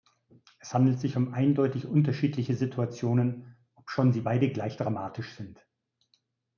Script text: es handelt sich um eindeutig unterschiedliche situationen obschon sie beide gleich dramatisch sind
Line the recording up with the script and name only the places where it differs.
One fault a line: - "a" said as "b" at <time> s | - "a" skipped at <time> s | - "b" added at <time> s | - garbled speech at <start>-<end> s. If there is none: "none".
none